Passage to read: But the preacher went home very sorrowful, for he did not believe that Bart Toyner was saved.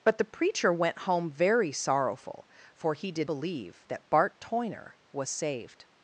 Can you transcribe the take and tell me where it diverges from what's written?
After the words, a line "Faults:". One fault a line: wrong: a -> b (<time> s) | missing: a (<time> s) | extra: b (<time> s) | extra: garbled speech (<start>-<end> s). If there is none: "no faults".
But the preacher went home very sorrowful, for he did believe that Bart Toyner was saved.
Faults:
missing: not (3.3 s)